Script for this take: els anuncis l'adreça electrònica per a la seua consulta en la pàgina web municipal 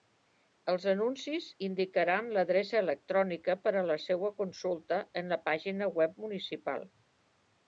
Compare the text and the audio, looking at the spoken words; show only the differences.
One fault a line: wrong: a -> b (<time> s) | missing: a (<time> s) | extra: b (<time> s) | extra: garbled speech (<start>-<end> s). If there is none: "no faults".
extra: indicaran (1.7 s)